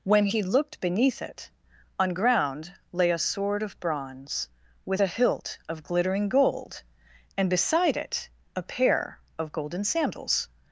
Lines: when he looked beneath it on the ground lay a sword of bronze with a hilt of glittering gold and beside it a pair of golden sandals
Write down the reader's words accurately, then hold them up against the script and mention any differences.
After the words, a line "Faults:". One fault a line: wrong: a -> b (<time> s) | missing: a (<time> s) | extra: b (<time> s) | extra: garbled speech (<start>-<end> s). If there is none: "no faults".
when he looked beneath it on ground lay a sword of bronze with a hilt of glittering gold and beside it a pair of golden sandals
Faults:
missing: the (2.1 s)